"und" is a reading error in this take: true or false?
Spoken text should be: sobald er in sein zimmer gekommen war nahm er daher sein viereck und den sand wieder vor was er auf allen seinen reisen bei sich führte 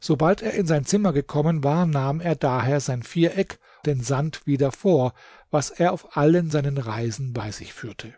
true